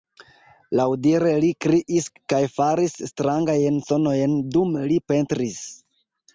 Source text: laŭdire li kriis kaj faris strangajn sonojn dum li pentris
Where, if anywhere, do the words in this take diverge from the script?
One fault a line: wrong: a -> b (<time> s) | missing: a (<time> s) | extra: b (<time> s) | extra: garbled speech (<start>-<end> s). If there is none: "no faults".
no faults